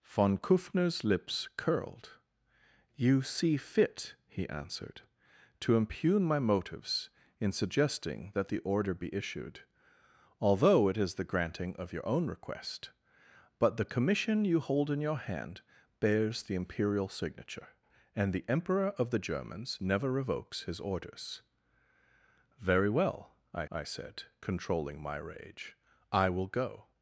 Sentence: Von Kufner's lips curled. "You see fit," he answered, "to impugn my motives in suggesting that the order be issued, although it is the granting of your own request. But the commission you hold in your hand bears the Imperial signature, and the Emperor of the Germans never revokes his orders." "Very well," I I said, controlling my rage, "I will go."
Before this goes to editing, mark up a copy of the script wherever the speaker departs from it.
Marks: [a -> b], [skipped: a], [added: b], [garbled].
Von Kufner's lips curled. "You see fit," he answered, "to impugn my motives in suggesting that the order be issued, although it is the granting of your own request. But the commission you hold in your hand bears the Imperial signature, and the Emperor of the Germans never revokes his orders." "Very well," I I said, controlling my rage, "I will go."